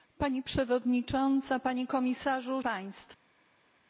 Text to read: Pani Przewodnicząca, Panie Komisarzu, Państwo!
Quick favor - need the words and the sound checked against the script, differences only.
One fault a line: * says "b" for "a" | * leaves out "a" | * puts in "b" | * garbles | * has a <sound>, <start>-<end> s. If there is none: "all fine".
all fine